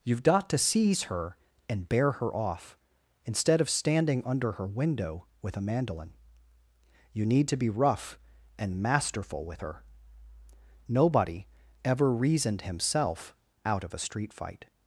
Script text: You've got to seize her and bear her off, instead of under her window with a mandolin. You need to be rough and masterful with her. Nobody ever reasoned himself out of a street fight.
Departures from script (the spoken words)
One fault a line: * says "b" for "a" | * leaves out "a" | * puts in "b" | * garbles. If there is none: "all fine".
* puts in "standing"